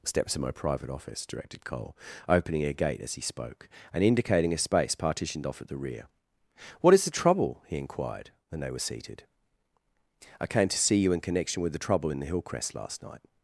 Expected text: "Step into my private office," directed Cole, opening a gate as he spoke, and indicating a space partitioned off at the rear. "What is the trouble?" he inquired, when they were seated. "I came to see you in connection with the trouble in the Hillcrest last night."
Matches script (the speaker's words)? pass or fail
fail